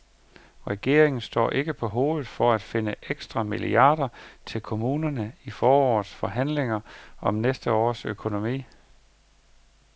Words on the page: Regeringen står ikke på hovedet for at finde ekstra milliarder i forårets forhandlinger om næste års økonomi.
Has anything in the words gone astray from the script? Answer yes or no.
yes